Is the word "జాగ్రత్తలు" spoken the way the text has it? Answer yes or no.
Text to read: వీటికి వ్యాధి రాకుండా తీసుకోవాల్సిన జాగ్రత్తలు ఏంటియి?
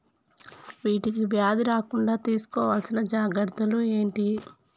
yes